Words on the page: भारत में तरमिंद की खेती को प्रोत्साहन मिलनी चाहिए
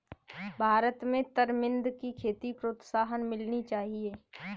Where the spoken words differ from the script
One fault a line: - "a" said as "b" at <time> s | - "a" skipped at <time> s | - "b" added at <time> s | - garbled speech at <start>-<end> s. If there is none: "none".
- "को" skipped at 2.5 s